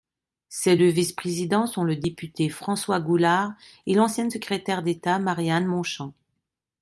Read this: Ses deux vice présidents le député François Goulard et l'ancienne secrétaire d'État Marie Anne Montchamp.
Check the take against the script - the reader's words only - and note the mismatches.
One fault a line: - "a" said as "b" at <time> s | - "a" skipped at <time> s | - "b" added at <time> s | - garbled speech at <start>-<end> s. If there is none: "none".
- "sont" added at 1.7 s